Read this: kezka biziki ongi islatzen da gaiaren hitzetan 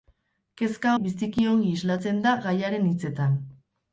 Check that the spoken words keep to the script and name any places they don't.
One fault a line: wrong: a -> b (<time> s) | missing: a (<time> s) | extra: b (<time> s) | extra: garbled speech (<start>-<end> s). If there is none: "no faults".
no faults